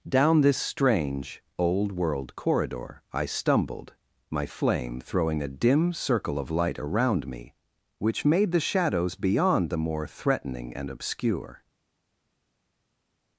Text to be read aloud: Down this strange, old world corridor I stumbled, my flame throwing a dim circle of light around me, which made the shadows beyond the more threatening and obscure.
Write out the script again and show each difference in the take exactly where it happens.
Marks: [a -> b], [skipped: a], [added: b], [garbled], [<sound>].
Down this strange, old world corridor I stumbled, my flame throwing a dim circle of light around me, which made the shadows beyond the more threatening and obscure.